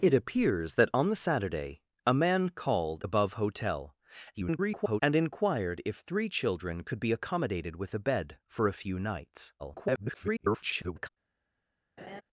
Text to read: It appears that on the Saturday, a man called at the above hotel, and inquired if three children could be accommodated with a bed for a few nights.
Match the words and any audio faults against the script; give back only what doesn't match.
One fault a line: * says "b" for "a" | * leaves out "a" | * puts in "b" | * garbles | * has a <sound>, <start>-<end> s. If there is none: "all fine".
* leaves out "at the"
* garbles
* garbles
* has a laugh, 12.0-12.2 s